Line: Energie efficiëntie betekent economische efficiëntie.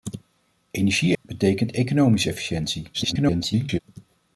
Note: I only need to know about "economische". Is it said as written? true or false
true